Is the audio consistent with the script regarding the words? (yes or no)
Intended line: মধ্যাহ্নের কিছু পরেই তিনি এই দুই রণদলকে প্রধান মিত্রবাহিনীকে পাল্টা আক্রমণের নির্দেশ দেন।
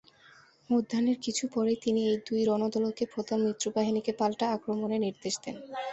yes